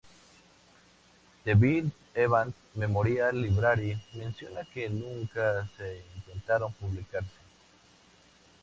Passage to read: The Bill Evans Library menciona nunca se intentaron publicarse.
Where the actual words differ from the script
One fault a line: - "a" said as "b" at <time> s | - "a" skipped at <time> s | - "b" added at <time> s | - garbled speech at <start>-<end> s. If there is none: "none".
- "Memorial" added at 2.8 s
- "que" added at 4.7 s